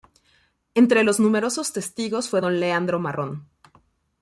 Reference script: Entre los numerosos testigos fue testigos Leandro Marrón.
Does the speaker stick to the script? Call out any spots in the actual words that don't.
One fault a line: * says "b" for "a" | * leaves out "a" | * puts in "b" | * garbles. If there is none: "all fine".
* says "don" for "testigos"